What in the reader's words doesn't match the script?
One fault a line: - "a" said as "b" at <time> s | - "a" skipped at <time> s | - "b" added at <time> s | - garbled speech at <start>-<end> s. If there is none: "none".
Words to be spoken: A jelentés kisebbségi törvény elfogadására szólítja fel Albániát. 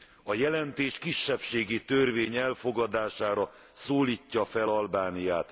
none